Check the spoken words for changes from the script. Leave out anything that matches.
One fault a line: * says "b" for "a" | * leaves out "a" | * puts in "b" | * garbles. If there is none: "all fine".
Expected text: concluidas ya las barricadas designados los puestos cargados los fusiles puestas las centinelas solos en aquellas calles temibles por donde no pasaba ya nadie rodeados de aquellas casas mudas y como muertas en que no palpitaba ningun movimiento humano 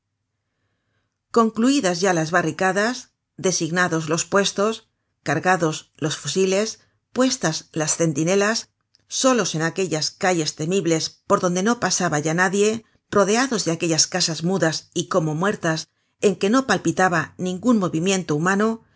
all fine